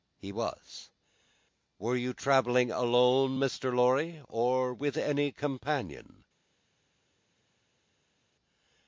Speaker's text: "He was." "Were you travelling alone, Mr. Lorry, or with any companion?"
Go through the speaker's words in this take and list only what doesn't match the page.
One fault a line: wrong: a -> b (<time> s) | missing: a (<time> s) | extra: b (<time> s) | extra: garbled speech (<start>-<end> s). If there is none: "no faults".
no faults